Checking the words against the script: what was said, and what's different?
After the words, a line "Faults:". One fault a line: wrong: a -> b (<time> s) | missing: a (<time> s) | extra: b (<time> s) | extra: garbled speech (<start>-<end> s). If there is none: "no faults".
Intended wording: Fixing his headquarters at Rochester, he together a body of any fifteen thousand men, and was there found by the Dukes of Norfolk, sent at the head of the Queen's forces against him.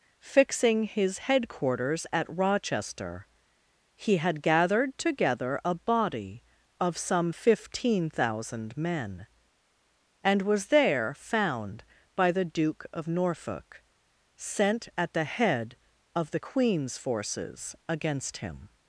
Fixing his headquarters at Rochester, he had gathered together a body of some fifteen thousand men, and was there found by the Duke of Norfolk, sent at the head of the Queen's forces against him.
Faults:
extra: had gathered (4.2 s)
wrong: any -> some (7.0 s)
wrong: Dukes -> Duke (12.5 s)